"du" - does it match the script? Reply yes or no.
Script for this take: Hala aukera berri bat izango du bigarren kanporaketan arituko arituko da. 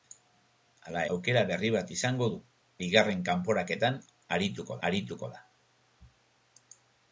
yes